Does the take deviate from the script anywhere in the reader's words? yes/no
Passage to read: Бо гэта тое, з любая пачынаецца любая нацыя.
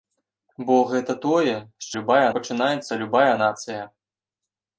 no